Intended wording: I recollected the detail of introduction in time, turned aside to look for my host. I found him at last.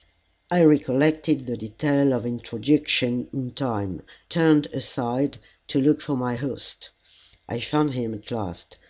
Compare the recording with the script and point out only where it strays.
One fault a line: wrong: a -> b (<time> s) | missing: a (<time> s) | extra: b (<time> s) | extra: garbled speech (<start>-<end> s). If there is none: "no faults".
no faults